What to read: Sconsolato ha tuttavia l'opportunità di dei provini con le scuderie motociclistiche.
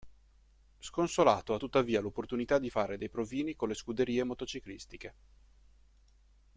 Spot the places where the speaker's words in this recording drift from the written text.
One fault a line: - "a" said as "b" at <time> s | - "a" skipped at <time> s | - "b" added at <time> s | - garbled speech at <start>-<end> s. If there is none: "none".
- "fare" added at 2.7 s